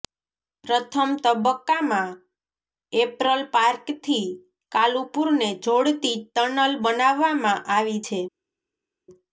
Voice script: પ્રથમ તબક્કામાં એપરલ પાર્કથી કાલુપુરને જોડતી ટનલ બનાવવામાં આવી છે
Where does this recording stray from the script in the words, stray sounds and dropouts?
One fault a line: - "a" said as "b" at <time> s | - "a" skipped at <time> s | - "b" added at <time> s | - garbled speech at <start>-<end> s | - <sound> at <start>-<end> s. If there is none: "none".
none